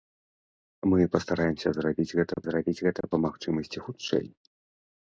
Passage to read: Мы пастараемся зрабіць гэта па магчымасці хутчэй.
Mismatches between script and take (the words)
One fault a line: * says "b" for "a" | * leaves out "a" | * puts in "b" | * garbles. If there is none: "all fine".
* puts in "зрабіць гэта"